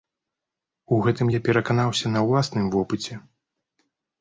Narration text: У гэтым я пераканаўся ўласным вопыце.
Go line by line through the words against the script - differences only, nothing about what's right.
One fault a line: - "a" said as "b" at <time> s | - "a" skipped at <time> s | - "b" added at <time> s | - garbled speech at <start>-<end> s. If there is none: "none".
- "на" added at 2.1 s